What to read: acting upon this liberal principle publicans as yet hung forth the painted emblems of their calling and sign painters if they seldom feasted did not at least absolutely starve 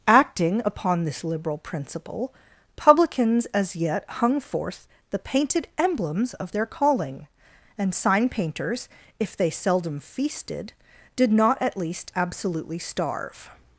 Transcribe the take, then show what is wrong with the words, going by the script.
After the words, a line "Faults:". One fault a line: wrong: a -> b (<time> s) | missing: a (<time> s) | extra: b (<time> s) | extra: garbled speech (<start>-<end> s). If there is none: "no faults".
acting upon this liberal principle publicans as yet hung forth the painted emblems of their calling and sign painters if they seldom feasted did not at least absolutely starve
Faults:
no faults